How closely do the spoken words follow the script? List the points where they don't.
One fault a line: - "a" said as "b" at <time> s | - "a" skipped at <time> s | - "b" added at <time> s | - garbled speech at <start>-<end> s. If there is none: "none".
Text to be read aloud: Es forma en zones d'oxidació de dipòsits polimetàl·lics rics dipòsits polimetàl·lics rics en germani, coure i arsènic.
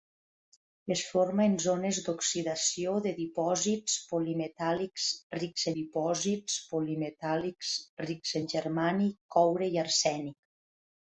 none